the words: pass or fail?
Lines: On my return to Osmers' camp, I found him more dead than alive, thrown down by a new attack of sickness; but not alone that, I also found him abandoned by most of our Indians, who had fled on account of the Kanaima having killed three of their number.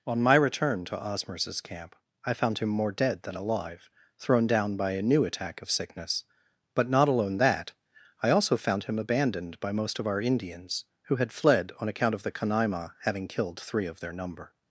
pass